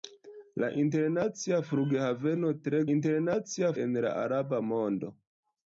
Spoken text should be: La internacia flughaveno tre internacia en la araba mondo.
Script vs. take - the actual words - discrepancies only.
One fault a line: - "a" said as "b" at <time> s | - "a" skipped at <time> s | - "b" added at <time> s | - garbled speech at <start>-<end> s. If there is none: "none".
none